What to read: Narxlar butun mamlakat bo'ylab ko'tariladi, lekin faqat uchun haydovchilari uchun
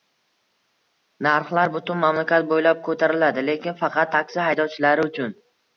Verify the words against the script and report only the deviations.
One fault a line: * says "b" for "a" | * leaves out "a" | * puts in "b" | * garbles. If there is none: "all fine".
* says "taksi" for "uchun"